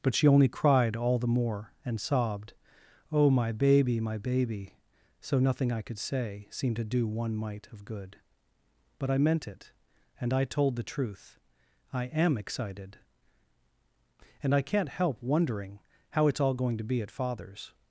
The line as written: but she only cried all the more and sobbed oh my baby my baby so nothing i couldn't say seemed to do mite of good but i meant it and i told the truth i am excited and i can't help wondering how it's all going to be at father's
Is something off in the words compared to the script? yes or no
yes